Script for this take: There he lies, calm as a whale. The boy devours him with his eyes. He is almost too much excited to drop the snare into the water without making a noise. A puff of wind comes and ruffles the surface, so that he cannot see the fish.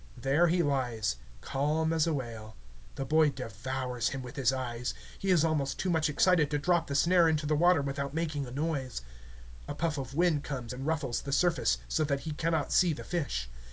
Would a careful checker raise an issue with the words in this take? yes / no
no